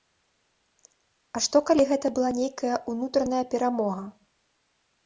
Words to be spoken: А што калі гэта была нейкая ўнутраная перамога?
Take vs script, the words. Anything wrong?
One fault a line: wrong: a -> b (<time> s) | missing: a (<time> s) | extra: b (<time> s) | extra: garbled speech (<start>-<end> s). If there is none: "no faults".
no faults